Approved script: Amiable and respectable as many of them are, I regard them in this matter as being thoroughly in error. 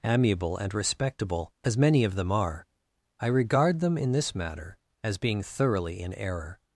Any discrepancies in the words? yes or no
no